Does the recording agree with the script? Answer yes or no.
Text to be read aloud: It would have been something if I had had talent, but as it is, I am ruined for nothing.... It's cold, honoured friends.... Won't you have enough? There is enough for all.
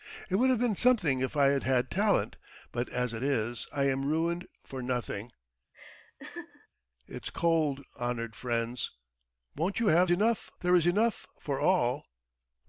yes